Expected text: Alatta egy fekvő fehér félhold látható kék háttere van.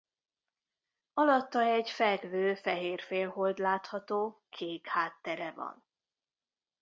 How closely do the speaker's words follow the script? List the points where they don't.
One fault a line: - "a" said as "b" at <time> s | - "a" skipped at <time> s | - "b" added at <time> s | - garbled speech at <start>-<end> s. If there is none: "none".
none